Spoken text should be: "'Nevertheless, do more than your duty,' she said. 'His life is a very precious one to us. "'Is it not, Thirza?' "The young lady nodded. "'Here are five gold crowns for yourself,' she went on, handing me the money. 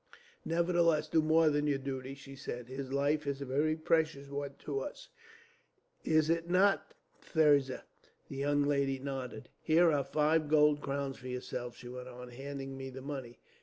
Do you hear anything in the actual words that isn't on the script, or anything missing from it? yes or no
no